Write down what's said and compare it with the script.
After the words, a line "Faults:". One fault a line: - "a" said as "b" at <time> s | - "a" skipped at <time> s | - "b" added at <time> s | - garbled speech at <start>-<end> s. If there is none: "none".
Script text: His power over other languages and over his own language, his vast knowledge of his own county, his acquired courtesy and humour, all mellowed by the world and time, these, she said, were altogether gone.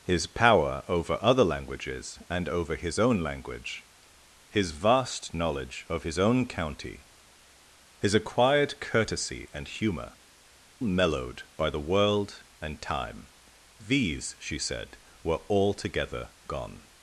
His power over other languages and over his own language, his vast knowledge of his own county, his acquired courtesy and humour, mellowed by the world and time, these, she said, were altogether gone.
Faults:
- "all" skipped at 10.1 s